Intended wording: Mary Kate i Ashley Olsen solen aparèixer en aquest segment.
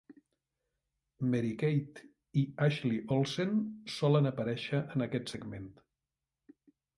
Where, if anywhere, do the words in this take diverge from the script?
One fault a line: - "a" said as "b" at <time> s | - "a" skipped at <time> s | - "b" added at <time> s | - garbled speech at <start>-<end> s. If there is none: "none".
none